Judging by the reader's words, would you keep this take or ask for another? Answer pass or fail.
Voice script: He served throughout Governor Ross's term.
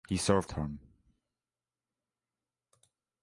fail